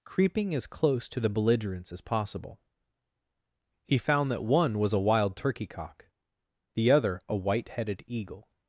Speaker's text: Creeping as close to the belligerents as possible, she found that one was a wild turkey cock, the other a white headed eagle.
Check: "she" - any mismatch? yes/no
yes